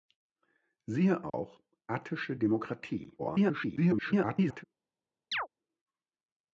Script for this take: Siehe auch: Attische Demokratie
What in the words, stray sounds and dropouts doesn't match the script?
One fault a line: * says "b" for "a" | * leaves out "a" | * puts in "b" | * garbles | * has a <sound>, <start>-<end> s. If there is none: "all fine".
* has a dropout, 1.3-1.3 s
* garbles
* has a chirp, 5.3-5.5 s